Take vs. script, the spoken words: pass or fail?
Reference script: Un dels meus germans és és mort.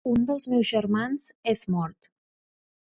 fail